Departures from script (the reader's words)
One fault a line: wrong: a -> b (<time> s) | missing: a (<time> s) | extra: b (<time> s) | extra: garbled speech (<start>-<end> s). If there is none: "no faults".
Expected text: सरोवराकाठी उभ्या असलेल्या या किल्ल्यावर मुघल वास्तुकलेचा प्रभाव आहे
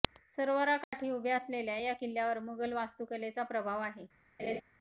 no faults